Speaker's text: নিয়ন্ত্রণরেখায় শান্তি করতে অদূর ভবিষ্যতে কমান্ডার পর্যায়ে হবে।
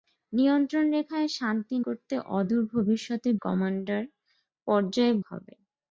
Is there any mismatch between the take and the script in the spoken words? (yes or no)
no